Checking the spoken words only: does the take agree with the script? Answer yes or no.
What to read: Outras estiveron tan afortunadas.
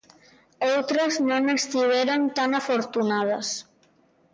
no